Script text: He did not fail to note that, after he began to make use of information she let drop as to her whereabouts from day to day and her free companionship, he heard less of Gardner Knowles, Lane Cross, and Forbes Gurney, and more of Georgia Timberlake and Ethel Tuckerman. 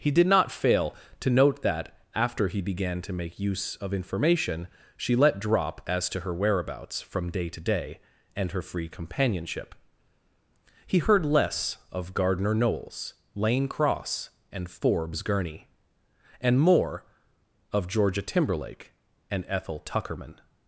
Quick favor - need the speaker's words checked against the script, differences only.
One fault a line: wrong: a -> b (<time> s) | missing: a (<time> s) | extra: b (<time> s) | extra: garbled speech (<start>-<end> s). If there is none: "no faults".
no faults